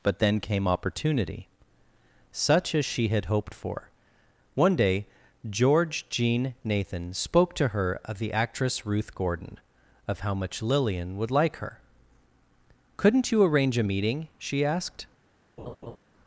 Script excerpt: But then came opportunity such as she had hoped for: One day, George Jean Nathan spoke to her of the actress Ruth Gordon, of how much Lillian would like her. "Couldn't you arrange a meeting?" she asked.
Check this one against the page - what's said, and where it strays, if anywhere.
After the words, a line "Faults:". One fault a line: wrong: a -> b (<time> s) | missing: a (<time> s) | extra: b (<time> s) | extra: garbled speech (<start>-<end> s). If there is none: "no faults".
But then came opportunity such as she had hoped for: One day, George Jean Nathan spoke to her of the actress Ruth Gordon, of how much Lillian would like her. "Couldn't you arrange a meeting?" she asked.
Faults:
no faults